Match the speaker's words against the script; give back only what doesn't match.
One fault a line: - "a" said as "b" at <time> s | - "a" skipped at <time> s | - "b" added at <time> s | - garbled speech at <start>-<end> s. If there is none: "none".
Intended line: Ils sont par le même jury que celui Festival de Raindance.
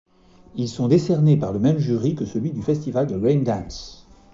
- "décernés" added at 0.8 s
- "du" added at 2.5 s